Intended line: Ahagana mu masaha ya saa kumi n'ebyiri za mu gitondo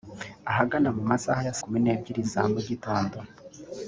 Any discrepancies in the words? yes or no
yes